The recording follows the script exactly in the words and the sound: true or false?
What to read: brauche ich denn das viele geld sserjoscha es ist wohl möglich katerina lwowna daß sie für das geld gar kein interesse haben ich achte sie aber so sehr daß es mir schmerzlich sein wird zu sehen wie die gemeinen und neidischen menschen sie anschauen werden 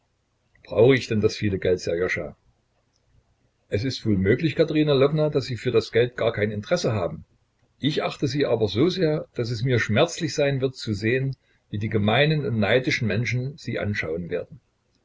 true